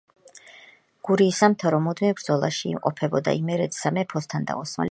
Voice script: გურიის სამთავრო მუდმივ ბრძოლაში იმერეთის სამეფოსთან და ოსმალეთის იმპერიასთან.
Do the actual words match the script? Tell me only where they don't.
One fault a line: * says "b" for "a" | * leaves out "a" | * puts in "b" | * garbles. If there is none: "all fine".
* puts in "იმყოფებოდა"